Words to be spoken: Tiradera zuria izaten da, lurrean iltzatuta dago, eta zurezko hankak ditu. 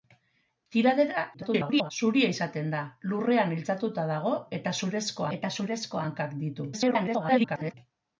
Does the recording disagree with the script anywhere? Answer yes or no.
yes